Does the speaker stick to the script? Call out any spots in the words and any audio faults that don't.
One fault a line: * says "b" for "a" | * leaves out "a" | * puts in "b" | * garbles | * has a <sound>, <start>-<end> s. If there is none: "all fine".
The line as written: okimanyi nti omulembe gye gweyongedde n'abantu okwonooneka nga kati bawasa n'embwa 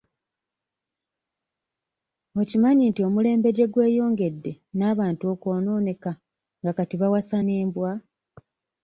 all fine